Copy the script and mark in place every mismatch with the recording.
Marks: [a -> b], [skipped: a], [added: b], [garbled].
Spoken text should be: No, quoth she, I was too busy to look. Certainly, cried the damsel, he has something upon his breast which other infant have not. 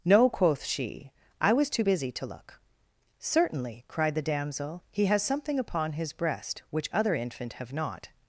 No, quoth she, I was too busy to look. Certainly, cried the damsel, he has something upon his breast which other infant have not.